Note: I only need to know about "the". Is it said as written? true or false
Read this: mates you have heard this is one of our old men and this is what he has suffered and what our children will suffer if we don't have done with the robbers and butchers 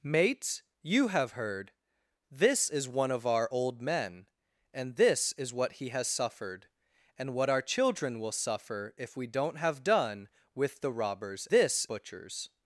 true